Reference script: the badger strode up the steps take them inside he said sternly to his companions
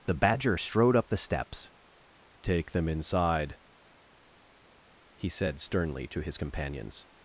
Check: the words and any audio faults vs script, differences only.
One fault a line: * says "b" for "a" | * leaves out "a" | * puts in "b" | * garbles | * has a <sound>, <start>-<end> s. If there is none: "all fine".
all fine